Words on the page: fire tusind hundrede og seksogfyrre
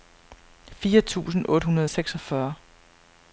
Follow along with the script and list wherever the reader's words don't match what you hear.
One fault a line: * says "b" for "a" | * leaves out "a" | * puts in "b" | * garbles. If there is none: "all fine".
* puts in "otte"